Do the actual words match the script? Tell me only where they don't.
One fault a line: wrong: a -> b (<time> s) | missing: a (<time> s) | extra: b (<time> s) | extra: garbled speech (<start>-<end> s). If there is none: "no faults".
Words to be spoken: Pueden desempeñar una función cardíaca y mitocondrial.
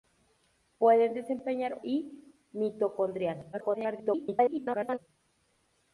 missing: una función cardíaca (1.8 s)
extra: garbled speech (3.5-5.0 s)